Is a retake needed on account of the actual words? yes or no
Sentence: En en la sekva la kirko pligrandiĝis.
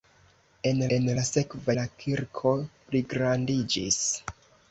no